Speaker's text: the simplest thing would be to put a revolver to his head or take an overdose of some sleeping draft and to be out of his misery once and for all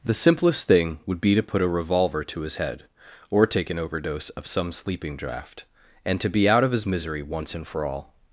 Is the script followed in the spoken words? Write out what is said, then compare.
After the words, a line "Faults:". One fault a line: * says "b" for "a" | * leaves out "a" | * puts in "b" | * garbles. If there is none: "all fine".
the simplest thing would be to put a revolver to his head or take an overdose of some sleeping draft and to be out of his misery once and for all
Faults:
all fine